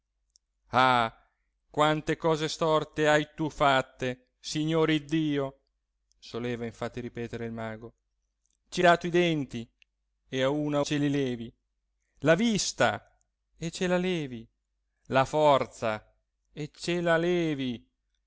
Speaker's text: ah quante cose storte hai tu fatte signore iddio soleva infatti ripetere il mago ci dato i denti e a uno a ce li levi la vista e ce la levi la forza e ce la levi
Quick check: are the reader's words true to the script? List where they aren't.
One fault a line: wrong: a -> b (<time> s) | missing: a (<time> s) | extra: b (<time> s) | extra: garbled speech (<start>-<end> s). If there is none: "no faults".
no faults